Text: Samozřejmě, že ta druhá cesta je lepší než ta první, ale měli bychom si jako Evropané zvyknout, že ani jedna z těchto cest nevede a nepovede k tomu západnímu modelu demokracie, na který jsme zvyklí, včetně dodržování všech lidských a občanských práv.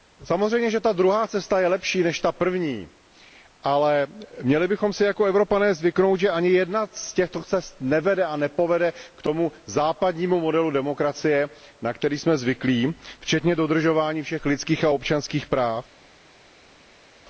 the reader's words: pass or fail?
pass